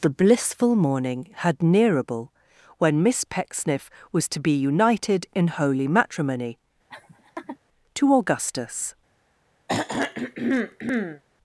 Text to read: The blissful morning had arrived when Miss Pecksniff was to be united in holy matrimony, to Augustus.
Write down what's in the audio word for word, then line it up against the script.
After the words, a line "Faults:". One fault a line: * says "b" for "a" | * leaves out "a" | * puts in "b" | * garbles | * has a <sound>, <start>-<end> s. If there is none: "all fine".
The blissful morning had nearable when Miss Pecksniff was to be united in holy matrimony, to Augustus.
Faults:
* says "nearable" for "arrived"
* has a laugh, 6.9-7.6 s
* has a throat clearing, 9.7-11.2 s